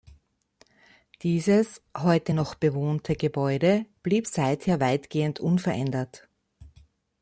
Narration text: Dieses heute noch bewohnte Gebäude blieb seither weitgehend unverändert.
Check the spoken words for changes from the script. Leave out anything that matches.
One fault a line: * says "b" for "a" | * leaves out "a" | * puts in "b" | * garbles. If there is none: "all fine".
all fine